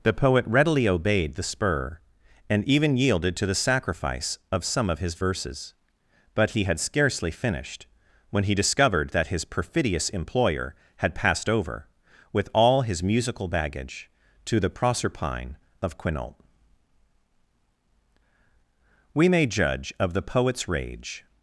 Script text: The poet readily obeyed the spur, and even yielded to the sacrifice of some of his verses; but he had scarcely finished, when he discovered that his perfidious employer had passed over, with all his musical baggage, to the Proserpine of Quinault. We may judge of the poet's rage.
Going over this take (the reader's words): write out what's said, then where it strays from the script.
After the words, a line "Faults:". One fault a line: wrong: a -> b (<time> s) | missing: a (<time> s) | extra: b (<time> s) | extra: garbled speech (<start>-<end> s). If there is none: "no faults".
The poet readily obeyed the spur, and even yielded to the sacrifice of some of his verses; but he had scarcely finished, when he discovered that his perfidious employer had passed over, with all his musical baggage, to the Proserpine of Quinault. We may judge of the poet's rage.
Faults:
no faults